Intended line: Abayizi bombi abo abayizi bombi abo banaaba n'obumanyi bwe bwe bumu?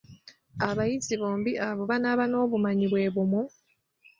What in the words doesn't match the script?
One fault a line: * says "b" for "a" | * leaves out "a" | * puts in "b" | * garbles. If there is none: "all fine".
* leaves out "abayizi bombi abo"
* leaves out "bwe"